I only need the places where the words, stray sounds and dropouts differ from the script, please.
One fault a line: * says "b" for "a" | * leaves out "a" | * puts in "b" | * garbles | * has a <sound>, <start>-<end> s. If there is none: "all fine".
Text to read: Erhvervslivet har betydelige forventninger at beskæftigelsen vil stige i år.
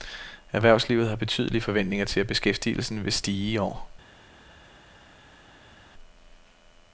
* puts in "til"